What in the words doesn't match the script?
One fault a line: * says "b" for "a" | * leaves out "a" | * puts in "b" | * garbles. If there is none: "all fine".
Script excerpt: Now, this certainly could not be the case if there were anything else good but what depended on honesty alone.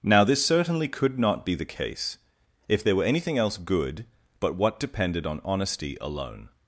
all fine